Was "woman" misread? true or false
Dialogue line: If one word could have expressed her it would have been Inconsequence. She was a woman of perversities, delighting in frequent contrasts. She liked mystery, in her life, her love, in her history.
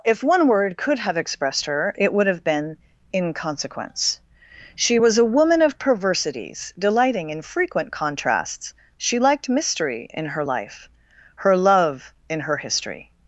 false